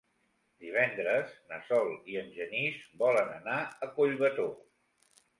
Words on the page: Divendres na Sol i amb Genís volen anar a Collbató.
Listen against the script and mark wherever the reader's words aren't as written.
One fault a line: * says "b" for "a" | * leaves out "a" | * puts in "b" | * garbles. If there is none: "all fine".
* says "en" for "amb"